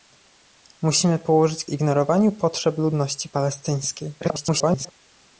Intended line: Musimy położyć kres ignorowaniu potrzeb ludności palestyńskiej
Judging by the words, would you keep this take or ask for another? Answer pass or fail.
fail